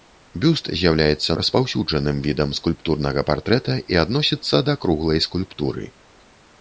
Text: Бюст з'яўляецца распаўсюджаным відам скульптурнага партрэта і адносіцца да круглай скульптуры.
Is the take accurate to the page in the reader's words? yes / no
yes